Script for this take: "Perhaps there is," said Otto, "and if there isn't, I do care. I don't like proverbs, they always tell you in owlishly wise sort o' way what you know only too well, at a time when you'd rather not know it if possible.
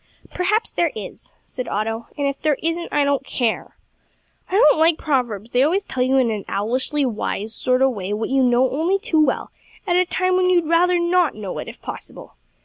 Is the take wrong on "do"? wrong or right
wrong